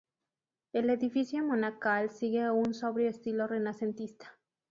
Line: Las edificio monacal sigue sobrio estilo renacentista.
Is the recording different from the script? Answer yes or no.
yes